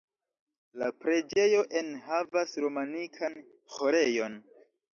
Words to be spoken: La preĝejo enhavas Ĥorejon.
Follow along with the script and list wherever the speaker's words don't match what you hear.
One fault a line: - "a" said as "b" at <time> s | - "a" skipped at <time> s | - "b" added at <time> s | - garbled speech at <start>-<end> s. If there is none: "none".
- "romanikan" added at 2.7 s